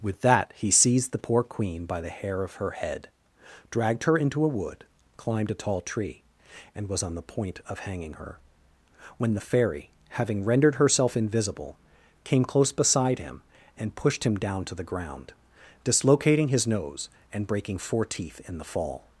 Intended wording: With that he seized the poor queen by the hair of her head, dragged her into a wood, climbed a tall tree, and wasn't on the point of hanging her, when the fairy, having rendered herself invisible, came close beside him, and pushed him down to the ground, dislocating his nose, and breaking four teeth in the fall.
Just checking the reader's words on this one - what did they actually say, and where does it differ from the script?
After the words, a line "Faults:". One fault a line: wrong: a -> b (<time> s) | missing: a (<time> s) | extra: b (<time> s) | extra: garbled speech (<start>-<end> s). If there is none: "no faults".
With that he seized the poor queen by the hair of her head, dragged her into a wood, climbed a tall tree, and was on the point of hanging her, when the fairy, having rendered herself invisible, came close beside him, and pushed him down to the ground, dislocating his nose, and breaking four teeth in the fall.
Faults:
wrong: wasn't -> was (6.9 s)